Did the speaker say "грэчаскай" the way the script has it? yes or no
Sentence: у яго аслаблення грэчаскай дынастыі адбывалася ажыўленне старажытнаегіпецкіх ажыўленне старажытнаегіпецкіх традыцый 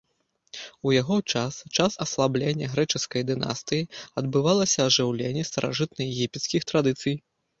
yes